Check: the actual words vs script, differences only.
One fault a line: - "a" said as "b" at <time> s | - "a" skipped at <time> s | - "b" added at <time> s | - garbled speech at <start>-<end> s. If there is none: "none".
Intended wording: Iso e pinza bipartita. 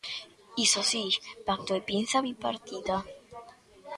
- "si pacto" added at 0.9 s